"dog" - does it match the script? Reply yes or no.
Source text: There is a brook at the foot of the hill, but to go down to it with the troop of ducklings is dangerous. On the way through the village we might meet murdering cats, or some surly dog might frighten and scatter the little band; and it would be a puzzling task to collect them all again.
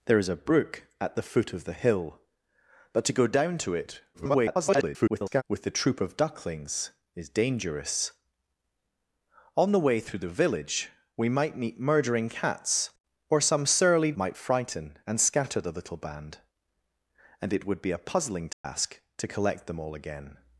no